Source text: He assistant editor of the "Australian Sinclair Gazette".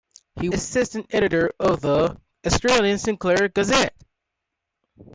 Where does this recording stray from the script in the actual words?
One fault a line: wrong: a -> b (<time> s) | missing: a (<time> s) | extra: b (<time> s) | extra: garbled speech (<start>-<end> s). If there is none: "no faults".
no faults